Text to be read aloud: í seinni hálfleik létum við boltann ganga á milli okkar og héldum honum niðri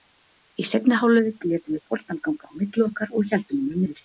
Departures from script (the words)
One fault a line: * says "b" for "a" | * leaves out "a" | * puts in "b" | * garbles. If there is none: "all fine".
all fine